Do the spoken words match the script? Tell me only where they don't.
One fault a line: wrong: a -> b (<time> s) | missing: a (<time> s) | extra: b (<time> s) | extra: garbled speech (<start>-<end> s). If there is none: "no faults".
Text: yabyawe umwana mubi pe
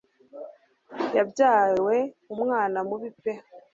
no faults